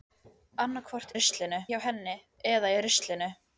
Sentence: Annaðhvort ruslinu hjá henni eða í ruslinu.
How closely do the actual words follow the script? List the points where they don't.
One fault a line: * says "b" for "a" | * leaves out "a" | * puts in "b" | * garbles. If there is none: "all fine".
all fine